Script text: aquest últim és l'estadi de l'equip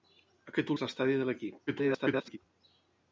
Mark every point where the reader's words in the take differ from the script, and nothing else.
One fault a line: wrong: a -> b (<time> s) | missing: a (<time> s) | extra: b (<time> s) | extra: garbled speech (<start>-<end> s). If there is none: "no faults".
missing: últim (0.7 s)
extra: garbled speech (1.7-2.4 s)